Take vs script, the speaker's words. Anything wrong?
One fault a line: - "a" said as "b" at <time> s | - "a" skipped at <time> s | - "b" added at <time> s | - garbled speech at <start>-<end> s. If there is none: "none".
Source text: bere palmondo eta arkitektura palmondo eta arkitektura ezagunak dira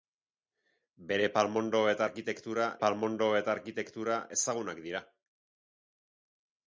none